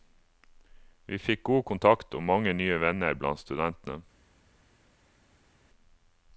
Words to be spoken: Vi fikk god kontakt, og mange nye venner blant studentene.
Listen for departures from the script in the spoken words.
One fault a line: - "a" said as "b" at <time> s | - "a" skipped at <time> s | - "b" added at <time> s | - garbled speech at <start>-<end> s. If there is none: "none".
none